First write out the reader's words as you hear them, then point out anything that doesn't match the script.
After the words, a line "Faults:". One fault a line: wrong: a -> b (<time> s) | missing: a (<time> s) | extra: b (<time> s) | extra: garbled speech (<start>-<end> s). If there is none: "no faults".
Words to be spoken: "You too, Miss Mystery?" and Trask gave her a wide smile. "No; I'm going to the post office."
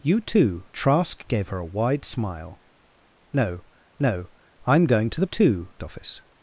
"You too, Trask gave her a wide smile. "No no; I'm going to the too office."
Faults:
missing: Miss Mystery and (0.7 s)
extra: no (4.0 s)
wrong: post -> too (5.2 s)